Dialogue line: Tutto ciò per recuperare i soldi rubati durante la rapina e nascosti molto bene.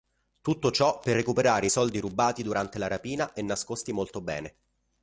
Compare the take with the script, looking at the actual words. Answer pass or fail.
pass